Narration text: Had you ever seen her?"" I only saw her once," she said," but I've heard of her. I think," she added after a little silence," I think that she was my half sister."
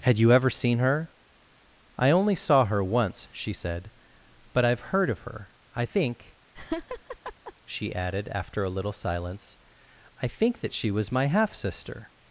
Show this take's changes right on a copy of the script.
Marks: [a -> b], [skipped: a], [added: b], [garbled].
Had you ever seen her?"" I only saw her once," she said," but I've heard of her. I think," she added after a little silence," I think that she was my half sister."